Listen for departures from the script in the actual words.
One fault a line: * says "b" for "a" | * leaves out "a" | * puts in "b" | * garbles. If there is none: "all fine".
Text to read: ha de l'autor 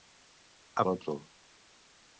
all fine